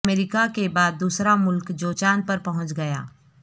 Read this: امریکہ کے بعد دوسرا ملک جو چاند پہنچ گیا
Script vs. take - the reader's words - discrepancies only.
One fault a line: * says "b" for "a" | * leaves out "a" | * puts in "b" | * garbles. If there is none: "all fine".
* puts in "پر"